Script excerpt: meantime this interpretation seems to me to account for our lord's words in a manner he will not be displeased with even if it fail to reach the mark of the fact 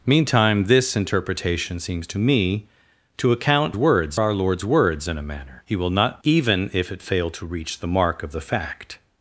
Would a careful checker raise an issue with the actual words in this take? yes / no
yes